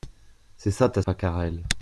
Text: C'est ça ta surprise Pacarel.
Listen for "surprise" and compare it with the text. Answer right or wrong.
wrong